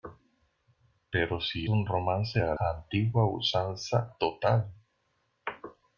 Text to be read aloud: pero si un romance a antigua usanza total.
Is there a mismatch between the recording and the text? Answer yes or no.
no